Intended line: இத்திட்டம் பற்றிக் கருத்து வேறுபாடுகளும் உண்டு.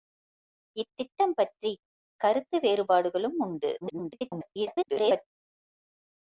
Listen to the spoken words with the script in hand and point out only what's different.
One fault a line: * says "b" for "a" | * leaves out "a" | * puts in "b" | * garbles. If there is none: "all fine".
* garbles